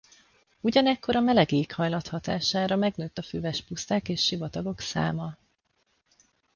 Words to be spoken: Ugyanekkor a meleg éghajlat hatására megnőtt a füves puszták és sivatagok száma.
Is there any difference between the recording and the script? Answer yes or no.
no